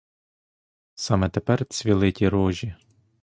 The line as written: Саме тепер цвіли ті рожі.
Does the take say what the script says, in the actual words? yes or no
yes